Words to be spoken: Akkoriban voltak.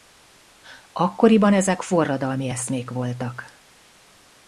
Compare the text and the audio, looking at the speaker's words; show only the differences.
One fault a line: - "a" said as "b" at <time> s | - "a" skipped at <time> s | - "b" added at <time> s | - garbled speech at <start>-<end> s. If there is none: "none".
- "ezek forradalmi eszmék" added at 1.5 s